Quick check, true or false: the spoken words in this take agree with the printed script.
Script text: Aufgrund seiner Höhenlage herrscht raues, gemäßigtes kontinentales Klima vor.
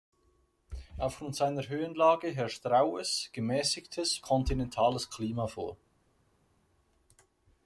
true